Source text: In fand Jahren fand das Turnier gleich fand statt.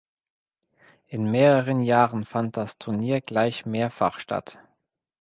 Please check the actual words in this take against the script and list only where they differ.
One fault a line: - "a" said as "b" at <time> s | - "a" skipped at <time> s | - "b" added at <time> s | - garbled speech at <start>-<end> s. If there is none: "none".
- "fand" said as "mehreren" at 1.3 s
- "fand" said as "mehrfach" at 3.7 s